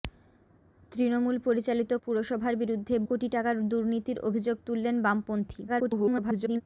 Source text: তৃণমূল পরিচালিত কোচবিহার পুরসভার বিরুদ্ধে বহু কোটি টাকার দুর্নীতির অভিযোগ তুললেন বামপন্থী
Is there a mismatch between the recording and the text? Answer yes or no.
yes